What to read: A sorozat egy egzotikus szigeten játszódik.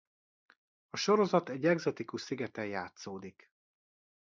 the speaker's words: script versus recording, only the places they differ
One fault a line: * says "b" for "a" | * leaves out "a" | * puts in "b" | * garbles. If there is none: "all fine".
all fine